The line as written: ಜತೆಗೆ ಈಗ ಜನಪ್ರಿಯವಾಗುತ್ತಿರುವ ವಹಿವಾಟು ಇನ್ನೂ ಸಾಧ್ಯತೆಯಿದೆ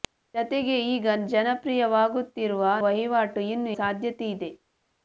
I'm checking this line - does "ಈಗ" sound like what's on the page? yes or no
yes